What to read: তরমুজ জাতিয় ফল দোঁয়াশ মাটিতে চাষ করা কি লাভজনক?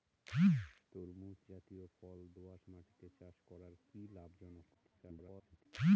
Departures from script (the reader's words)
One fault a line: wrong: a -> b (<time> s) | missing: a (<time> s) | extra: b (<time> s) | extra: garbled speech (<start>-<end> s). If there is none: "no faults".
extra: garbled speech (4.7-5.7 s)